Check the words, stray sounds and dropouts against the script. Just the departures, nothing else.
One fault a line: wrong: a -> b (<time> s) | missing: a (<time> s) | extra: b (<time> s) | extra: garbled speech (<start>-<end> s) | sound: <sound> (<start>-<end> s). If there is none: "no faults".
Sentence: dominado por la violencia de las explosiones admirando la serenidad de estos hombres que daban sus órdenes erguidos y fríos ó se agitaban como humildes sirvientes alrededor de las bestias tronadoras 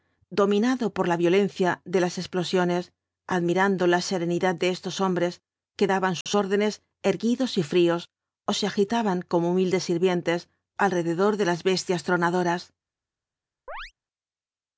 sound: dropout (6.2-6.3 s)
sound: chirp (13.7-13.9 s)